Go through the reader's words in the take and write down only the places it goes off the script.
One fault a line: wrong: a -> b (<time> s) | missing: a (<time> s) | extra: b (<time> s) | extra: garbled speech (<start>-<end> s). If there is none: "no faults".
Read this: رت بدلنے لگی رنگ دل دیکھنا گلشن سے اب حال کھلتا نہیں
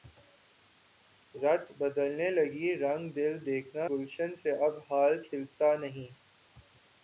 no faults